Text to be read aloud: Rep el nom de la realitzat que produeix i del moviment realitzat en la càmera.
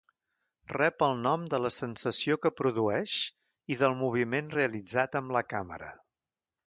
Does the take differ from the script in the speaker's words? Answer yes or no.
yes